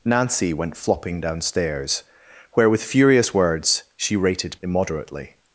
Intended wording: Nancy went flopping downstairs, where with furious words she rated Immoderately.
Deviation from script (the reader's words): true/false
false